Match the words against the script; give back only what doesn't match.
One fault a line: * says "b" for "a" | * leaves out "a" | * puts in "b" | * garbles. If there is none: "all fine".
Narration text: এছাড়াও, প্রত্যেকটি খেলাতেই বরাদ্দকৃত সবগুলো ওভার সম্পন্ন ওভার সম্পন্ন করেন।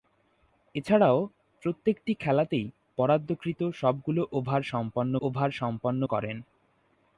all fine